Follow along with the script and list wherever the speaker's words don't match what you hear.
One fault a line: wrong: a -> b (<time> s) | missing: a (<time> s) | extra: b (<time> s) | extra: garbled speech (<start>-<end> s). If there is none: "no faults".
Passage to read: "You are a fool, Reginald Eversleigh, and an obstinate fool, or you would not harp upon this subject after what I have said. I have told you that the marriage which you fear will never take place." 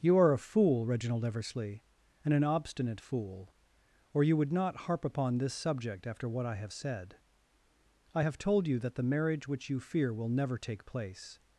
no faults